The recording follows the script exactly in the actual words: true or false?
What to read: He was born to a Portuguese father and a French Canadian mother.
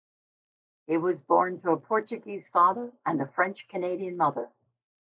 true